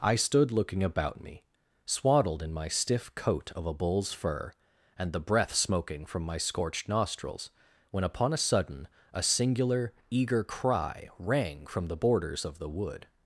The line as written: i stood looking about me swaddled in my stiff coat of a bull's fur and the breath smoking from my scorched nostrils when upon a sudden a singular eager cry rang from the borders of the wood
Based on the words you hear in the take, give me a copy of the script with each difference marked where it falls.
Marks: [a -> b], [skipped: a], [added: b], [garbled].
i stood looking about me swaddled in my stiff coat of a bull's fur and the breath smoking from my scorched nostrils when upon a sudden a singular eager cry rang from the borders of the wood